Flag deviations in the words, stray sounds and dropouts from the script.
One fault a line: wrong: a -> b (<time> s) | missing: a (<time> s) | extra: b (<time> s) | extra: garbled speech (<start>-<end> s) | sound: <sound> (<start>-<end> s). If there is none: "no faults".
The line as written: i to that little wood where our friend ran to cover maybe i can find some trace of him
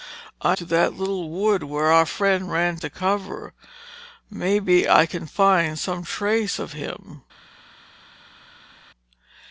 no faults